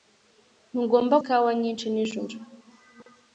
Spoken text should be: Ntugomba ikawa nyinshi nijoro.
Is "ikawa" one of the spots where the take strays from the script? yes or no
no